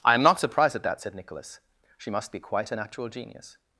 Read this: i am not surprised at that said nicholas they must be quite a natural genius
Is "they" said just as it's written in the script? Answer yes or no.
no